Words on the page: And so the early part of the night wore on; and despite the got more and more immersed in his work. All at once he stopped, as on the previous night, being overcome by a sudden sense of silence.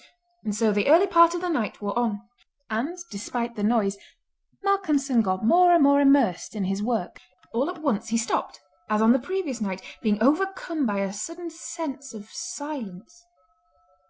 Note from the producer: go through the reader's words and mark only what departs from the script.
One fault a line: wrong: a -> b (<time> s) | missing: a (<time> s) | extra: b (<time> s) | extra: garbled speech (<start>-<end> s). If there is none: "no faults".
extra: noise Malcolmson (3.6 s)